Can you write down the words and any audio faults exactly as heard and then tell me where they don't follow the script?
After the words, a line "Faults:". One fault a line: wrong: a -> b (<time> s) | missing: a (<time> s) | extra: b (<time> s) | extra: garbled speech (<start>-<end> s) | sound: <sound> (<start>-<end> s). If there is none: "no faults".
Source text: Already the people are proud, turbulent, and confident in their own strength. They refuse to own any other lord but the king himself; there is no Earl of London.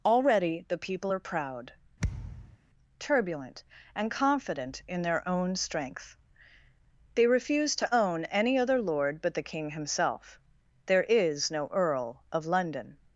Already the people are proud, turbulent, and confident in their own strength. They refuse to own any other lord but the king himself; there is no Earl of London.
Faults:
sound: thud (2.0-2.6 s)